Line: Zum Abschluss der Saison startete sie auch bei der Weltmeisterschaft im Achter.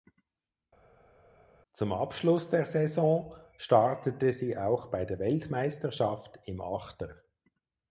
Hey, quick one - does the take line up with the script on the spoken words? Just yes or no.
yes